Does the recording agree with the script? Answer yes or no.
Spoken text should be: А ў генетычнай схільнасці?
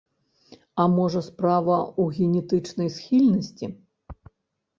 no